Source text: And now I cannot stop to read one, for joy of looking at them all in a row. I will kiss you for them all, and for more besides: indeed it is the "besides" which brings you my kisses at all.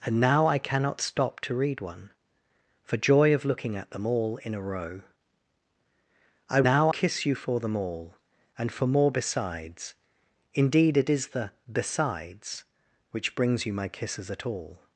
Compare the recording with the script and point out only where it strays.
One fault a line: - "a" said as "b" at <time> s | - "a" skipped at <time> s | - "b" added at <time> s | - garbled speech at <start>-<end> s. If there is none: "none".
- "will" said as "now" at 6.6 s